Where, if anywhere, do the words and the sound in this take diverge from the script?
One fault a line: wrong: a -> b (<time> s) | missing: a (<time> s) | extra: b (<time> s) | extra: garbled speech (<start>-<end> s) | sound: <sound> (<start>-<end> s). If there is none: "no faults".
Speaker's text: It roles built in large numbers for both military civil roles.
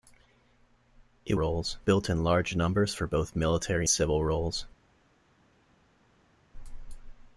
no faults